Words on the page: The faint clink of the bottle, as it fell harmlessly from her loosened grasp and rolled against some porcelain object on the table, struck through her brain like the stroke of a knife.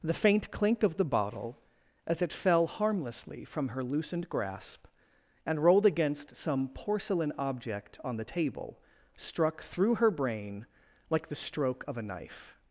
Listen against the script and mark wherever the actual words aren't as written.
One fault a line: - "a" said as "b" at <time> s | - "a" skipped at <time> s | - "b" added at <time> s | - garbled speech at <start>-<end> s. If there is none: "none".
none